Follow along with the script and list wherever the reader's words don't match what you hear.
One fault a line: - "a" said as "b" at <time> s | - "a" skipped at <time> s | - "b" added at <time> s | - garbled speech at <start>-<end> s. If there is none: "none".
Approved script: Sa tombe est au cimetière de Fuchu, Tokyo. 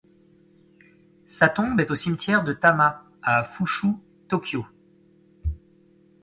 - "Tama à" added at 2.5 s